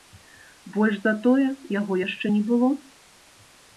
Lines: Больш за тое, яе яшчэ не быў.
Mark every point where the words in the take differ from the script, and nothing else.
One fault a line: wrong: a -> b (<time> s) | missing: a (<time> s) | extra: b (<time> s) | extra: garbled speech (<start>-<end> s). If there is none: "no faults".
wrong: яе -> яго (1.8 s)
wrong: быў -> было (2.5 s)